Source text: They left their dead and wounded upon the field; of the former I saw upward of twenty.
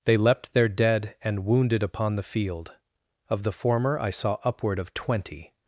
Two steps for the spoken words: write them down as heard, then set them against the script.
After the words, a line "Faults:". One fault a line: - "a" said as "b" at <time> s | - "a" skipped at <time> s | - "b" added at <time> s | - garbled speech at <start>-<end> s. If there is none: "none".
They leapt their dead and wounded upon the field; of the former I saw upward of twenty.
Faults:
- "left" said as "leapt" at 0.2 s